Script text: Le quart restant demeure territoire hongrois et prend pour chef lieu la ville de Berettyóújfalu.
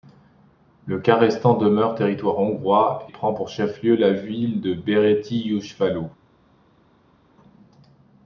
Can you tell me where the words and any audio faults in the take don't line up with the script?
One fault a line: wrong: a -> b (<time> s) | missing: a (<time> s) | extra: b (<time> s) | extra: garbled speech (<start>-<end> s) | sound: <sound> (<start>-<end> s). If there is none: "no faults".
missing: et (3.1 s)